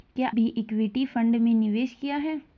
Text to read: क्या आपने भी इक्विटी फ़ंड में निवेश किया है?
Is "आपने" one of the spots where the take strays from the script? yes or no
yes